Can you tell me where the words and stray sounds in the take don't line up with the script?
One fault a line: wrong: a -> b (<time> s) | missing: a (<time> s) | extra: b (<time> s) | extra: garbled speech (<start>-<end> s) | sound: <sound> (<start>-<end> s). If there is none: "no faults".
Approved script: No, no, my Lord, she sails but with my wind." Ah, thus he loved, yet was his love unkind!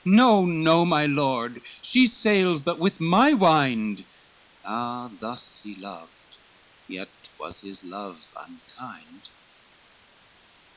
no faults